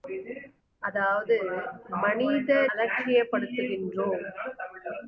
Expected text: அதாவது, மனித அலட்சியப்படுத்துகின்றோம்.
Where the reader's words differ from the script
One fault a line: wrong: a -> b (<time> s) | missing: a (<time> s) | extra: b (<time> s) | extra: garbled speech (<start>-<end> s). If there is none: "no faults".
no faults